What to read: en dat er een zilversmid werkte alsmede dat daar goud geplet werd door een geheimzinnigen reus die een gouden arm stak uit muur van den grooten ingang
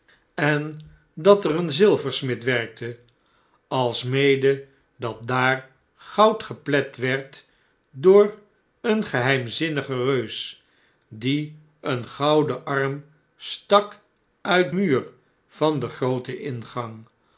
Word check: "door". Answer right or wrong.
right